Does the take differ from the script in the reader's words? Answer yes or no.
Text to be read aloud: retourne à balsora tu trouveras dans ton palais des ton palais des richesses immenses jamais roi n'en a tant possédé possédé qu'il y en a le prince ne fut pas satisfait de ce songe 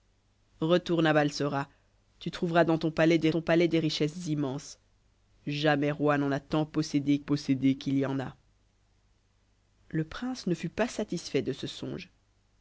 no